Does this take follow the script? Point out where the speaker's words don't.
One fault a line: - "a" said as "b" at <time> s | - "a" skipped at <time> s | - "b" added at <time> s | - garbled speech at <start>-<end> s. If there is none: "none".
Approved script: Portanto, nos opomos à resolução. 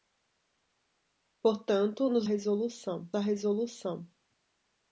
- "opomos" said as "resolução" at 2.2 s